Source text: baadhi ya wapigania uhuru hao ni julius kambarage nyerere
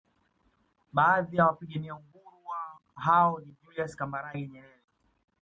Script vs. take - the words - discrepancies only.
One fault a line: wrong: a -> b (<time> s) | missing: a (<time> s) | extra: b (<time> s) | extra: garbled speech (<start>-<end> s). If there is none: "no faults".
no faults